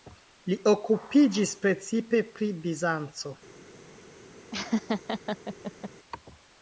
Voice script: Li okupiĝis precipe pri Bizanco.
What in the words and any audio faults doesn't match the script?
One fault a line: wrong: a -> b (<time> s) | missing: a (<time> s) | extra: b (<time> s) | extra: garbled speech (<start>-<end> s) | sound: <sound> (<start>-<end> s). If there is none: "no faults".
sound: laugh (4.5-5.9 s)